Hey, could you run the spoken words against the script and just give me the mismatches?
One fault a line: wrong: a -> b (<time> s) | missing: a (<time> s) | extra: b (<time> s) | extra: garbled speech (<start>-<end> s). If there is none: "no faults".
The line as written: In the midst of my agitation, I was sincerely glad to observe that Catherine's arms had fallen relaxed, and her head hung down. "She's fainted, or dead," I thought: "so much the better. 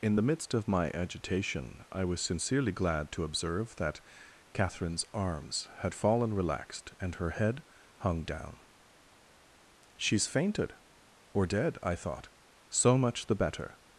no faults